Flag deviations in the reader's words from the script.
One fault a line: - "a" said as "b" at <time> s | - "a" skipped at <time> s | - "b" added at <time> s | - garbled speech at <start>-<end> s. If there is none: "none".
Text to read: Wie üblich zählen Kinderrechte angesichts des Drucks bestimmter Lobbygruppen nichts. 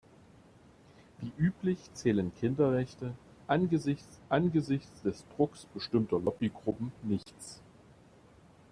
- "angesichts" added at 4.3 s